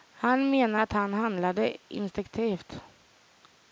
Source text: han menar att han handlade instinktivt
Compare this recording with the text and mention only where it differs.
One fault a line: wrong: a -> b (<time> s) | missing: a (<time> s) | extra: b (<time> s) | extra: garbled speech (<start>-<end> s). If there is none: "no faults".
no faults